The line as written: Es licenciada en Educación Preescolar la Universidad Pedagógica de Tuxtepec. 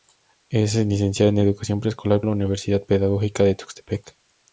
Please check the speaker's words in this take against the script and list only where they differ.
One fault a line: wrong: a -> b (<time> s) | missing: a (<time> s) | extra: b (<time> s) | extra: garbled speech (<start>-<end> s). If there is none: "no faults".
no faults